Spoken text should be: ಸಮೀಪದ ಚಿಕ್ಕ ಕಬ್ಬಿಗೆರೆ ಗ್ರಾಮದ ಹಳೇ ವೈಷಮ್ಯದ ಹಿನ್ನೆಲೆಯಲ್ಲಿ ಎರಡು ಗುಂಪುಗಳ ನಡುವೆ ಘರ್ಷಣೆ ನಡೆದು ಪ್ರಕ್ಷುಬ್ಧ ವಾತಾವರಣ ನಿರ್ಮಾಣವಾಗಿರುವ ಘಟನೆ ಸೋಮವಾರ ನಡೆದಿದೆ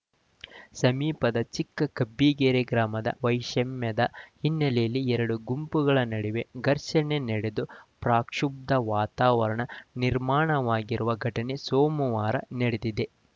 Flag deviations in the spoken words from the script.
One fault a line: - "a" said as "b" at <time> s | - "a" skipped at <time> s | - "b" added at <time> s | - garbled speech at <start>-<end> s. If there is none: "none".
- "ಹಳೇ" skipped at 3.1 s